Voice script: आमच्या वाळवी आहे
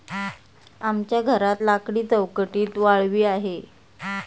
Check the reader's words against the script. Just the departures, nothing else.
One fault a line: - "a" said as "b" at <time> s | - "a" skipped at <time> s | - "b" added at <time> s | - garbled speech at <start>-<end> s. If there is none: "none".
- "घरात लाकडी चौकटीत" added at 1.2 s